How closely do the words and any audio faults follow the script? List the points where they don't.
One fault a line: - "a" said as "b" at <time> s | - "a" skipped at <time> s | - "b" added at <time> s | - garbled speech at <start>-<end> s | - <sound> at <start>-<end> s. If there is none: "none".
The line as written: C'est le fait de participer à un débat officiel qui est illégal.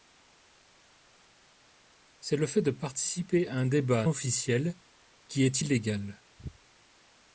none